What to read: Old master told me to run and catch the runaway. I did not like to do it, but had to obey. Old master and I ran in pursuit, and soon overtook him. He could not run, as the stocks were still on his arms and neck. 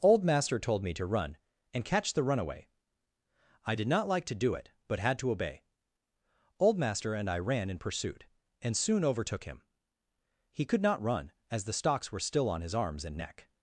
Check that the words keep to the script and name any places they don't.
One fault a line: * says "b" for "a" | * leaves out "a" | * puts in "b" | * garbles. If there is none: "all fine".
all fine